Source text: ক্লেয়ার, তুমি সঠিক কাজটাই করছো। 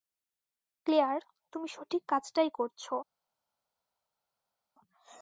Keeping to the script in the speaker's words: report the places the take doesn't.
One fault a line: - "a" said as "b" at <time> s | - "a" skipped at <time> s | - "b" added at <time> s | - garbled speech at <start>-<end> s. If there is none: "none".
none